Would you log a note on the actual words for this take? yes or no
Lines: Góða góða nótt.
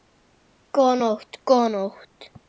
yes